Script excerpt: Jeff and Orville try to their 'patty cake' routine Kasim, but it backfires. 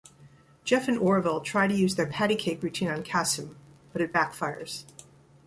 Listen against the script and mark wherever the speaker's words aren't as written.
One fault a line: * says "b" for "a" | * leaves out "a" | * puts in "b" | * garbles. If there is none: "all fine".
* puts in "use"
* puts in "on"